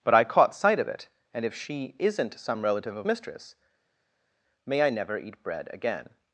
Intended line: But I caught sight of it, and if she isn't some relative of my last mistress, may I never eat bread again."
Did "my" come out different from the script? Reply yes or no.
yes